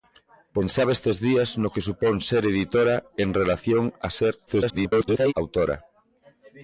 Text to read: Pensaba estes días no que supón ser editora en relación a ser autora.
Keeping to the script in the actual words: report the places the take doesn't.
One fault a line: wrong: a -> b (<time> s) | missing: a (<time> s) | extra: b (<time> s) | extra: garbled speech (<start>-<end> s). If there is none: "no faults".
extra: garbled speech (4.5-5.3 s)